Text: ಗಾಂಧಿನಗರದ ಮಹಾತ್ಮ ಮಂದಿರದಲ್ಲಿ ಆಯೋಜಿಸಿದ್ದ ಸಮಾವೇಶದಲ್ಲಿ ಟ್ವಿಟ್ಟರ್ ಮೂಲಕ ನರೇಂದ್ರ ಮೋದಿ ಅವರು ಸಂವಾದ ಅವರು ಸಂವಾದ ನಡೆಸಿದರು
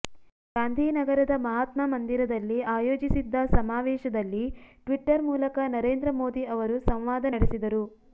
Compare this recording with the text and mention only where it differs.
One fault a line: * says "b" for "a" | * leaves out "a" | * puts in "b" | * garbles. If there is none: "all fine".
* leaves out "ಅವರು ಸಂವಾದ"